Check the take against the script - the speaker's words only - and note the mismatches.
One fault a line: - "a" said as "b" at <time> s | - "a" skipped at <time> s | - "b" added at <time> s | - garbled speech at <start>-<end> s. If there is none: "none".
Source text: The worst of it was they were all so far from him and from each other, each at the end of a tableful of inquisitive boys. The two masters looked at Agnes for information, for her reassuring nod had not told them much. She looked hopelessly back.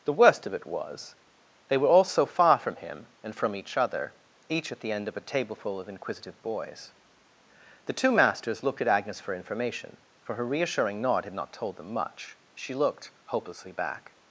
none